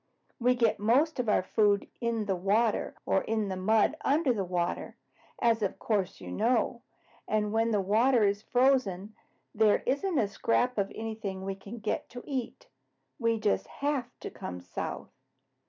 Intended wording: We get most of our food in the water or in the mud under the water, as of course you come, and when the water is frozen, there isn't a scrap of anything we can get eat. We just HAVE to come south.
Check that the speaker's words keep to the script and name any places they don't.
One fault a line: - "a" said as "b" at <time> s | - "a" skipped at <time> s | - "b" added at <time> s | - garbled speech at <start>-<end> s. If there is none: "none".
- "come" said as "know" at 6.3 s
- "to" added at 12.1 s